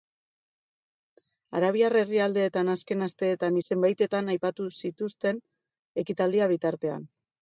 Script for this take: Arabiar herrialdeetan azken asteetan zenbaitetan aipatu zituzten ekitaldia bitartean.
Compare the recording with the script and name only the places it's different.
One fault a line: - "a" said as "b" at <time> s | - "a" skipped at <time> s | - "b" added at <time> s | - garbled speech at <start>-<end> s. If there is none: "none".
none